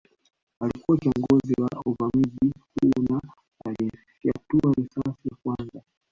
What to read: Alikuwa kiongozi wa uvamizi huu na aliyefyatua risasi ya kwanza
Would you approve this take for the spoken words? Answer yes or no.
yes